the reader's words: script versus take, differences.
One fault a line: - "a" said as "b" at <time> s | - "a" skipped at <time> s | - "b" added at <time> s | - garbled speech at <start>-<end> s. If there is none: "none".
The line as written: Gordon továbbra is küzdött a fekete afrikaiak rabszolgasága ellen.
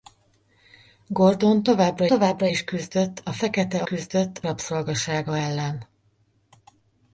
- "továbbra" added at 2.1 s
- "afrikaiak" said as "küzdött" at 3.8 s